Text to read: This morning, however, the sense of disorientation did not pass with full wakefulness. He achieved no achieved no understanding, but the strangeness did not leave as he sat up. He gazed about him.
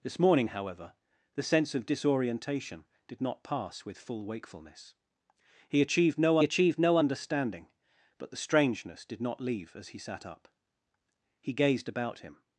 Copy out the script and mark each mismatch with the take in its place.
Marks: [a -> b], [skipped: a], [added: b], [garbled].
This morning, however, the sense of disorientation did not pass with full wakefulness. He achieved no achieved no understanding, but the strangeness did not leave as he sat up. He gazed about him.